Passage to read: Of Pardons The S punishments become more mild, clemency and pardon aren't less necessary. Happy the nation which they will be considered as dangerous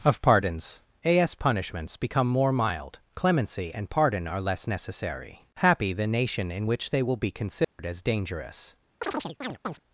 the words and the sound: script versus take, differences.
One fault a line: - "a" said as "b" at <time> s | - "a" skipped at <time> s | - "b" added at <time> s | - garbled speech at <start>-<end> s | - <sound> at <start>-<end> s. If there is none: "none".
- "The" said as "A" at 1.1 s
- "aren't" said as "are" at 4.3 s
- "in" added at 6.5 s
- dropout at 7.6-7.8 s
- chirp at 9.0-9.8 s